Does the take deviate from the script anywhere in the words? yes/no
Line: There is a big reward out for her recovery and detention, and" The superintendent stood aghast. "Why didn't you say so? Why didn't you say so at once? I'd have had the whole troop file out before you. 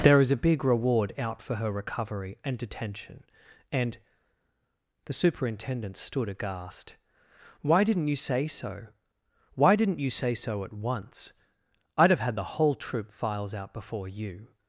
yes